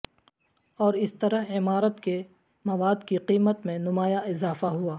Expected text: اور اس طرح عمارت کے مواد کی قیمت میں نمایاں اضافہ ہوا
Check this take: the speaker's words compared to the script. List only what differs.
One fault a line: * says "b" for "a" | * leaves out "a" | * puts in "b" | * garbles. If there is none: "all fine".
all fine